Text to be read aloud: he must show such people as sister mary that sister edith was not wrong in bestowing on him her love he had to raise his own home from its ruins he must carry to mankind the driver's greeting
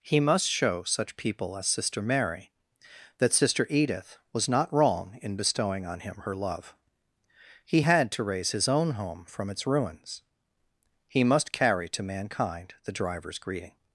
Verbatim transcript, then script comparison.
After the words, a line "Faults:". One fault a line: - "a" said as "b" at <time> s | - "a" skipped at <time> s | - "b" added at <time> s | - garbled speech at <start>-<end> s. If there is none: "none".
he must show such people as sister mary that sister edith was not wrong in bestowing on him her love he had to raise his own home from its ruins he must carry to mankind the driver's greeting
Faults:
none